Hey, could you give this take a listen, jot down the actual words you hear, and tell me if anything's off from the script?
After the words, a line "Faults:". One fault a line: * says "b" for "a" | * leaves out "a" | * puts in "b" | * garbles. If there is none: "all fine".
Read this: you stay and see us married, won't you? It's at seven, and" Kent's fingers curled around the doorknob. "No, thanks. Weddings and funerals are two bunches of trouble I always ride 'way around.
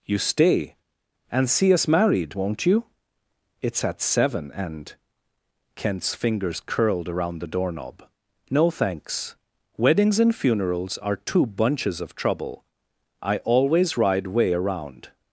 you stay and see us married, won't you? It's at seven, and" Kent's fingers curled around the doorknob. "No, thanks. Weddings and funerals are two bunches of trouble I always ride 'way around.
Faults:
all fine